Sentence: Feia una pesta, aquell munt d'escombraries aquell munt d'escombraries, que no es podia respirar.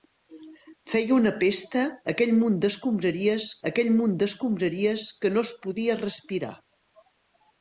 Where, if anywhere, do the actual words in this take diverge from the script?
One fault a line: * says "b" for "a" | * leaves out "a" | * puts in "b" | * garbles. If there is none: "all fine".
all fine